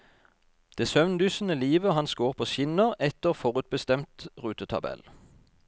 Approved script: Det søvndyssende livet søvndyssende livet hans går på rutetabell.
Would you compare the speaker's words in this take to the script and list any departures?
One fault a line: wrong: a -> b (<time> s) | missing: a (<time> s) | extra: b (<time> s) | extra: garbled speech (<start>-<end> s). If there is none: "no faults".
missing: søvndyssende livet (1.9 s)
extra: skinner etter forutbestemt (2.4 s)